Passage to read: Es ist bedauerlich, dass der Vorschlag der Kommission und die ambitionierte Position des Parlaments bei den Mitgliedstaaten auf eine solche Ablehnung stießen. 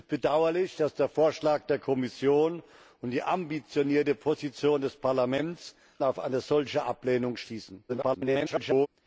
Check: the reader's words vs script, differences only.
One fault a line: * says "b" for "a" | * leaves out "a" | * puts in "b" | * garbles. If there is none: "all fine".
* leaves out "bei den Mitgliedstaaten"
* garbles